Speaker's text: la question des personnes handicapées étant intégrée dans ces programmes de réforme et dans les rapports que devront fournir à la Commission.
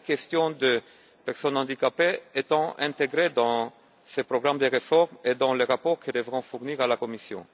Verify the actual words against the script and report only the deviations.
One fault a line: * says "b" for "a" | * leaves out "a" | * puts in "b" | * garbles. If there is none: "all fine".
all fine